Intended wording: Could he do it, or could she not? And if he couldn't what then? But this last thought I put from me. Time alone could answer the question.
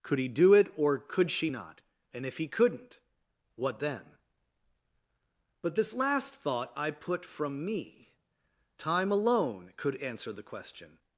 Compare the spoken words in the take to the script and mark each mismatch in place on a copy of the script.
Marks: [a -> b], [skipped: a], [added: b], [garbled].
Could he do it, or could she not? And if he couldn't what then? But this last thought I put from me. Time alone could answer the question.